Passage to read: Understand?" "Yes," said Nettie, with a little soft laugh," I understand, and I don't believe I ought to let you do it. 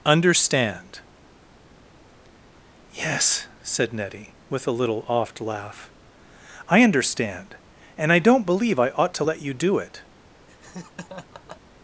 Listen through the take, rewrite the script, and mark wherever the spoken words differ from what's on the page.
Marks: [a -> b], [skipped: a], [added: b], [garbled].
Understand?" "Yes," said Nettie, with a little [soft -> oft] laugh," I understand, and I don't believe I ought to let you do it.